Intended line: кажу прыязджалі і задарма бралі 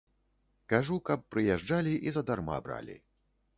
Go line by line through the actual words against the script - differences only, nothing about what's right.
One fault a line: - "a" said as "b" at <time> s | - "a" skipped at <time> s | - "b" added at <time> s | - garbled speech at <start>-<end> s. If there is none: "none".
- "каб" added at 1.1 s